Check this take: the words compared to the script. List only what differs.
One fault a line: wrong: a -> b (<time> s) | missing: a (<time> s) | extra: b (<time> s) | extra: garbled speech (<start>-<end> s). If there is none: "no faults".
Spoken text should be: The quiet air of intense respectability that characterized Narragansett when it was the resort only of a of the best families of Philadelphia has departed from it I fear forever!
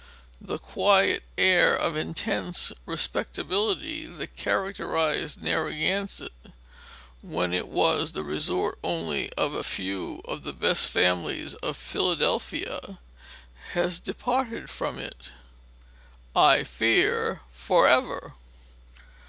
extra: few (9.6 s)